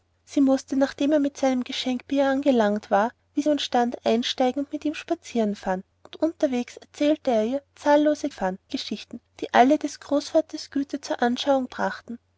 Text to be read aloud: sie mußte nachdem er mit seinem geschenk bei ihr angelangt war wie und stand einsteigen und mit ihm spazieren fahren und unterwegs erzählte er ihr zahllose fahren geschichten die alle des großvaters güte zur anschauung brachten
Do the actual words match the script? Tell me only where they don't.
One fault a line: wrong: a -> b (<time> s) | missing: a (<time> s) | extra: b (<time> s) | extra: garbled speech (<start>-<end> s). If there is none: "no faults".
no faults